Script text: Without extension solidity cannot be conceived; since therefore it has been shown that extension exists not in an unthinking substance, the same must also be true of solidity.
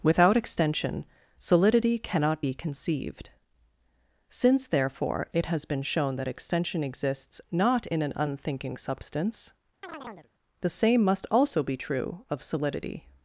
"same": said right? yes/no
yes